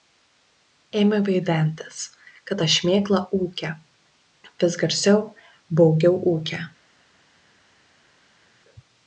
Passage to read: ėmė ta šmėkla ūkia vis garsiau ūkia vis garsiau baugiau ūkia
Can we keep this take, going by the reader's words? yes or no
no